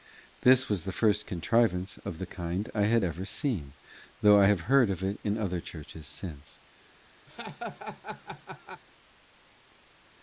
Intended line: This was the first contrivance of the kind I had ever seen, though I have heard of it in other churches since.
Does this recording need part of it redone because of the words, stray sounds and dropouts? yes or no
yes